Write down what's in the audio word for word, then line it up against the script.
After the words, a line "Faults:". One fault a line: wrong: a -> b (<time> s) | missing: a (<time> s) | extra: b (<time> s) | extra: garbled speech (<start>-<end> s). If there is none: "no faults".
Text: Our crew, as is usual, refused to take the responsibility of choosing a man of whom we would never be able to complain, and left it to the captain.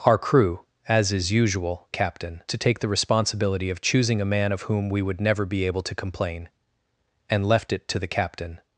Our crew, as is usual, captain to take the responsibility of choosing a man of whom we would never be able to complain, and left it to the captain.
Faults:
wrong: refused -> captain (1.9 s)